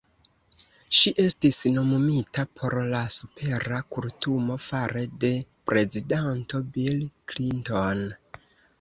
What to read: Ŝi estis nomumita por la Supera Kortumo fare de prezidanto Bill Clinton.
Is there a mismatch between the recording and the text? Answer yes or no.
no